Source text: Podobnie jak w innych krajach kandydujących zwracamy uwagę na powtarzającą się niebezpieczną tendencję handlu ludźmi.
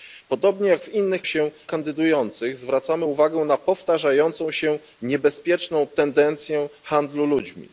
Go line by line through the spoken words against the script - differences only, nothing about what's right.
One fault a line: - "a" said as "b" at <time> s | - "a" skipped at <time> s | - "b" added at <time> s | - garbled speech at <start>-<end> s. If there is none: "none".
- "krajach" said as "się" at 1.2 s